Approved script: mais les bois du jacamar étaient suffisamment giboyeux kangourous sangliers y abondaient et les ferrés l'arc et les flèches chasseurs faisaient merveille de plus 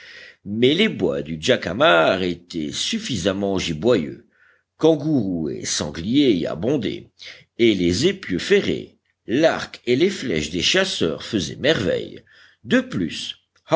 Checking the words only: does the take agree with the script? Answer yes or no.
no